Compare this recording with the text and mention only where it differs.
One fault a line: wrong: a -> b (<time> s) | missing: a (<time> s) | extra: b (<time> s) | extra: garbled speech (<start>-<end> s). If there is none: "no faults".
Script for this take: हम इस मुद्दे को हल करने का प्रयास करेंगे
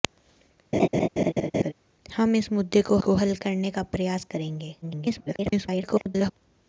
extra: को (3.0 s)
extra: garbled speech (4.8-6.3 s)